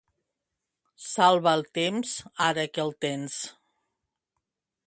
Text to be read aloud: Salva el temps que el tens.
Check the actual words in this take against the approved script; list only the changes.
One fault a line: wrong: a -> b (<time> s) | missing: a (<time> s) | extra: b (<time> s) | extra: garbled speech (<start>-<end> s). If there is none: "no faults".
extra: ara (2.5 s)